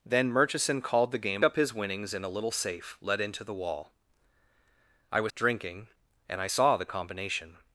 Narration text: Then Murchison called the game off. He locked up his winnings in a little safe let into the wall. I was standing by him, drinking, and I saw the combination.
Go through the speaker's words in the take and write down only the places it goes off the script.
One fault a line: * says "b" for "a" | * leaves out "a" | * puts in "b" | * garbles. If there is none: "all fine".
* leaves out "off He locked"
* leaves out "standing by him"